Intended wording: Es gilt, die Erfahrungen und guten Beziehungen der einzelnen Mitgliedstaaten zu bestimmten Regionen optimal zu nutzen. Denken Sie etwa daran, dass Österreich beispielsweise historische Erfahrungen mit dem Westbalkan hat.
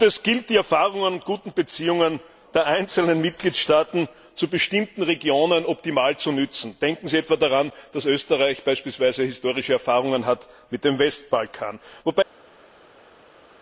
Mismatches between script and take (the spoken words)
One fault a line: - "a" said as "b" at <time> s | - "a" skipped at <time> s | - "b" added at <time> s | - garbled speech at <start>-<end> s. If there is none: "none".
none